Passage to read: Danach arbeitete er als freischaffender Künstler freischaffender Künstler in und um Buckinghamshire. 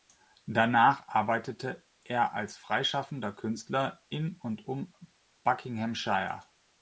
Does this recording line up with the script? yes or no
no